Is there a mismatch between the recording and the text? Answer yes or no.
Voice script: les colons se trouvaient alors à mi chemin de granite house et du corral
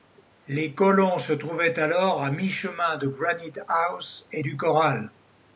no